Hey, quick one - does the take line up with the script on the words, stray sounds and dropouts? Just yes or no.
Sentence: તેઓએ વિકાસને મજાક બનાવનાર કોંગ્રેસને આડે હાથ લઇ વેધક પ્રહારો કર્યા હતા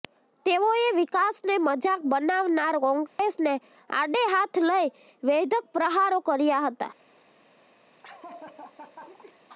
no